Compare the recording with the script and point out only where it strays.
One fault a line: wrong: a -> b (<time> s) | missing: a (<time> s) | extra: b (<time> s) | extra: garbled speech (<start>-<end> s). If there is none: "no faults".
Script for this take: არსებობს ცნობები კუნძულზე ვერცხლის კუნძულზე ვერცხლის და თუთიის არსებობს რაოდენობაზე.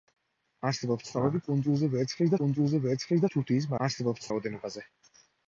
no faults